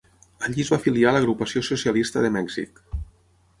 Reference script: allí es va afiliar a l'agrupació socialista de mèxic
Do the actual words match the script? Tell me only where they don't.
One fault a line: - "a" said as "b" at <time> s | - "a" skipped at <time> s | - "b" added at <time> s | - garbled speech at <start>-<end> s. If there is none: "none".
none